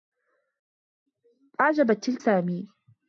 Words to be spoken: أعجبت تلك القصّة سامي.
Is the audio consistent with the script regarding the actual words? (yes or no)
no